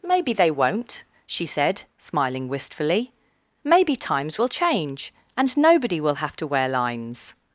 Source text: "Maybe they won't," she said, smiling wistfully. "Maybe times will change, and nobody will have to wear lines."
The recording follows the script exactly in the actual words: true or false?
true